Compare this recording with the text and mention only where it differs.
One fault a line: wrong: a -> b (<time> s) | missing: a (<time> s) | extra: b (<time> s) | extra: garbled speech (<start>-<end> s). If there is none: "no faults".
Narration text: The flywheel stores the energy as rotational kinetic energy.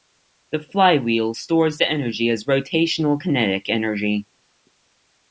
no faults